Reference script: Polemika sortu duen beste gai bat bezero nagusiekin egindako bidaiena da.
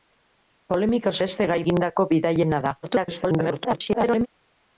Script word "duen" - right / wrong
wrong